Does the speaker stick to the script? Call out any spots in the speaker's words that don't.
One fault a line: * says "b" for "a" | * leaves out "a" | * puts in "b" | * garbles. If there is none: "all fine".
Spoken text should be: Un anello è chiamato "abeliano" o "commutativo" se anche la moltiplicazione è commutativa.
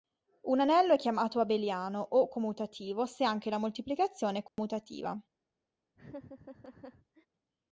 all fine